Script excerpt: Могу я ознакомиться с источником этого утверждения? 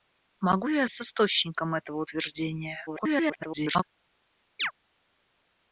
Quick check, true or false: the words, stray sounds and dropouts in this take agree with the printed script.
false